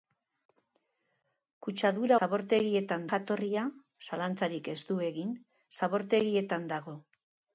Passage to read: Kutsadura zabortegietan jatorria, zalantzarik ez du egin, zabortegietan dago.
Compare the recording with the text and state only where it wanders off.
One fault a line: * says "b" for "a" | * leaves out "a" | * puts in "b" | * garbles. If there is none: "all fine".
all fine